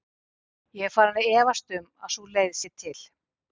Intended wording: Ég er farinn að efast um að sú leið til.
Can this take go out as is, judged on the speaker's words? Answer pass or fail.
fail